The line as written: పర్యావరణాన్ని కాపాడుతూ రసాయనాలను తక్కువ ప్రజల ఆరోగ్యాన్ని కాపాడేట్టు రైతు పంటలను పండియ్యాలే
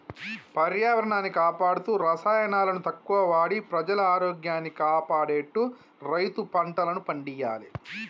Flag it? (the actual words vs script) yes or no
yes